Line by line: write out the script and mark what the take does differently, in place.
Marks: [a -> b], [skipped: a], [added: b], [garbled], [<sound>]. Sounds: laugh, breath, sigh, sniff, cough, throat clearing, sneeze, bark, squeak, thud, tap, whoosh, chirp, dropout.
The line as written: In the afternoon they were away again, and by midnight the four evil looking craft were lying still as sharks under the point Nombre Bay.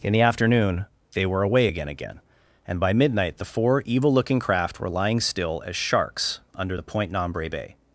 In the afternoon they were away again, [added: again] and by midnight the four evil looking craft were lying still as sharks under the point Nombre Bay.